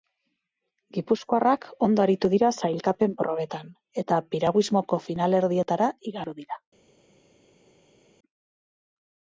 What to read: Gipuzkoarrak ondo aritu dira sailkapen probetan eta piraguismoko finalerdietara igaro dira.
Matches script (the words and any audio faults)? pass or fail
pass